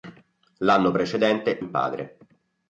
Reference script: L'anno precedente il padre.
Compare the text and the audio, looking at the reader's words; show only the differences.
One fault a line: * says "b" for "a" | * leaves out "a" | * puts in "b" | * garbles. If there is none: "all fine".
all fine